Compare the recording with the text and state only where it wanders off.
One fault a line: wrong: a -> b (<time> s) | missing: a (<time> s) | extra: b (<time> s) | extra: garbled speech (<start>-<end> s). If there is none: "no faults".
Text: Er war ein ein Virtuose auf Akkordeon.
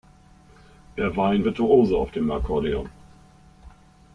missing: ein (1.4 s)
extra: dem (2.1 s)